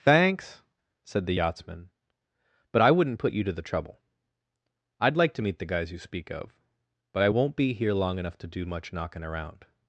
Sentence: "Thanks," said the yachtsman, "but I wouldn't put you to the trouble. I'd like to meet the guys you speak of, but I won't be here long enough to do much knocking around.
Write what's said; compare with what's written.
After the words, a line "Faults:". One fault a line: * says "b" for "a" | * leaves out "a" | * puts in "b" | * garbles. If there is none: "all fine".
"Thanks," said the yachtsman, "but I wouldn't put you to the trouble. I'd like to meet the guys you speak of, but I won't be here long enough to do much knocking around.
Faults:
all fine